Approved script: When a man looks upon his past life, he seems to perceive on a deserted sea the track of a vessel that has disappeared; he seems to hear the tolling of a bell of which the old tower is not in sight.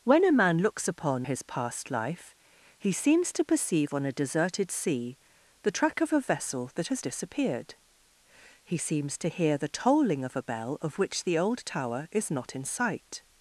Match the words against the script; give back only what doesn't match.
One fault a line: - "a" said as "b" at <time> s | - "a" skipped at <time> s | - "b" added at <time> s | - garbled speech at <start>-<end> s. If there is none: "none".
none